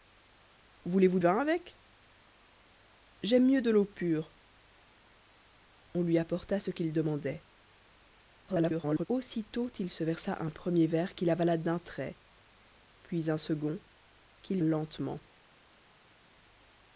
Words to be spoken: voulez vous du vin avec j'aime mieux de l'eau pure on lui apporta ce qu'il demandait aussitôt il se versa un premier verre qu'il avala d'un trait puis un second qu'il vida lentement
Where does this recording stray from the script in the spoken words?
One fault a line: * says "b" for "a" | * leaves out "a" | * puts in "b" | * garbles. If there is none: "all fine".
* leaves out "du"
* garbles
* leaves out "vida"